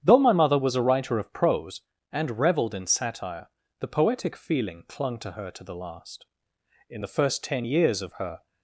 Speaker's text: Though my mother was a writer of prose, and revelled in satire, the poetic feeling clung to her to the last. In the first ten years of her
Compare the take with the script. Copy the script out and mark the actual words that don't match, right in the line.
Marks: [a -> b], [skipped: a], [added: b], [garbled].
Though my mother was a writer of prose, and revelled in satire, the poetic feeling clung to her to the last. In the first ten years of her